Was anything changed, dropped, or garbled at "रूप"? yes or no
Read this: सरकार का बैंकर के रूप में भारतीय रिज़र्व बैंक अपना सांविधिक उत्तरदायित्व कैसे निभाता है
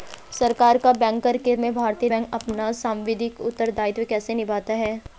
yes